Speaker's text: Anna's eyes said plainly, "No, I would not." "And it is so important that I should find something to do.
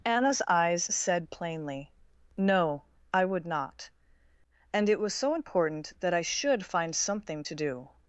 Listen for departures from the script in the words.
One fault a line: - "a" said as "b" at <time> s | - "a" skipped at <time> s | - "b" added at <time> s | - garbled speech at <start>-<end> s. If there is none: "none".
- "is" said as "was" at 5.0 s